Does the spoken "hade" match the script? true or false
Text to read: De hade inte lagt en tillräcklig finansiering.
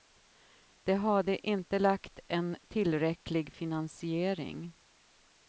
true